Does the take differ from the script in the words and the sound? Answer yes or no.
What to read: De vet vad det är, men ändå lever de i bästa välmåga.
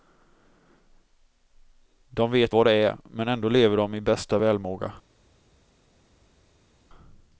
no